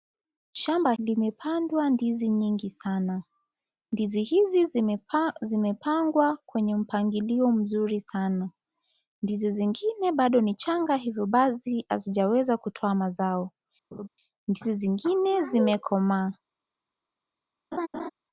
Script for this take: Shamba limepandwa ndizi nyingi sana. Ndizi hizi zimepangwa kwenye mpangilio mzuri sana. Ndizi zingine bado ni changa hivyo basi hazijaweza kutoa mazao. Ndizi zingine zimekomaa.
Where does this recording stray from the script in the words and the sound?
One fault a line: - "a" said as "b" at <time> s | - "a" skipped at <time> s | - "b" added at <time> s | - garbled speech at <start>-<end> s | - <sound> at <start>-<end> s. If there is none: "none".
- laugh at 13.9-14.1 s
- laugh at 17.7-18.1 s